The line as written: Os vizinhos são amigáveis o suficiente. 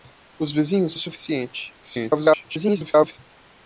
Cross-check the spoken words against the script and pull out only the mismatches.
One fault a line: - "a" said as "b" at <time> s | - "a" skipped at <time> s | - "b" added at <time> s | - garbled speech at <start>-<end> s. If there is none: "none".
- "são amigáveis" skipped at 0.9 s
- garbled speech at 1.8-3.2 s